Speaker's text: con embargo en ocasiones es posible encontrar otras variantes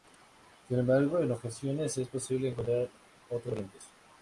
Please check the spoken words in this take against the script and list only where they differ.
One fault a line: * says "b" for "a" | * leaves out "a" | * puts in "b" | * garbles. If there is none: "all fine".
* says "sin" for "con"